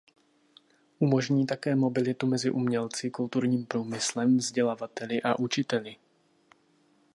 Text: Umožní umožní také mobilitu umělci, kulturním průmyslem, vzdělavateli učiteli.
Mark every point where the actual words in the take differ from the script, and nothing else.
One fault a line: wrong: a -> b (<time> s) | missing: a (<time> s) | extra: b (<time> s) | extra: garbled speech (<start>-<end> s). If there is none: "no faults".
missing: umožní (1.4 s)
extra: mezi (2.3 s)
extra: a (5.2 s)